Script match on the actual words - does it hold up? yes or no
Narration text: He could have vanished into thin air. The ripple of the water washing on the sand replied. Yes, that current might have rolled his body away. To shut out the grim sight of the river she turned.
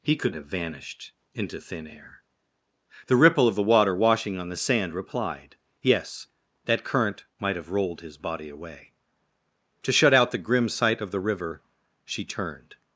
yes